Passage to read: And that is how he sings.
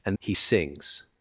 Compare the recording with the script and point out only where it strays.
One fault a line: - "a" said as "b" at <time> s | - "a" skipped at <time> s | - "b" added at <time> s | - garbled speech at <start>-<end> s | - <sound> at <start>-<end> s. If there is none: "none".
- "that is how" skipped at 0.2 s